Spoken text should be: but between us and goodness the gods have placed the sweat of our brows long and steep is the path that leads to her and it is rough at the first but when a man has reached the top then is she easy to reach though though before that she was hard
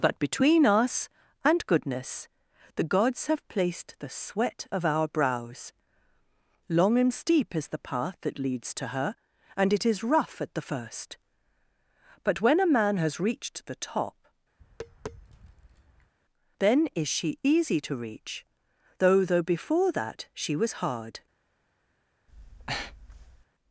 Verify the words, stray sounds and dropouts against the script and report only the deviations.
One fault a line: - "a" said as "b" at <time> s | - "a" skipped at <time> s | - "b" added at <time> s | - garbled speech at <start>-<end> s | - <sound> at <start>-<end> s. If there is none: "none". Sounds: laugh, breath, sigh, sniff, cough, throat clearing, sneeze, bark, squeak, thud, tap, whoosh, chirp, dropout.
- tap at 14.6-16.1 s
- breath at 22.3-23.5 s